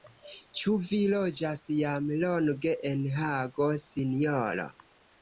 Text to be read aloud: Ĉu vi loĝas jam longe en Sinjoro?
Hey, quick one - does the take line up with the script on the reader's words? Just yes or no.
no